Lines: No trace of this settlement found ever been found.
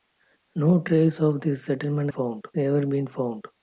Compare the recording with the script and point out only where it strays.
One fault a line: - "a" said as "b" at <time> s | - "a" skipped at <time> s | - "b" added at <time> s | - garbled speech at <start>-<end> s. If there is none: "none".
none